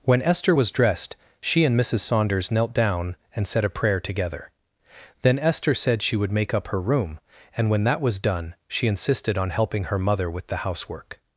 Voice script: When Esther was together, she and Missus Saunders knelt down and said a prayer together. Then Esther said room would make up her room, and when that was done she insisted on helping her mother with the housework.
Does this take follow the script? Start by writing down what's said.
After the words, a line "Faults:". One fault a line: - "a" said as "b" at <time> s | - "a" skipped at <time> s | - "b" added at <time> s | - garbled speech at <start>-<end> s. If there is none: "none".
When Esther was dressed, she and Missus Saunders knelt down and said a prayer together. Then Esther said she would make up her room, and when that was done she insisted on helping her mother with the housework.
Faults:
- "together" said as "dressed" at 0.7 s
- "room" said as "she" at 6.0 s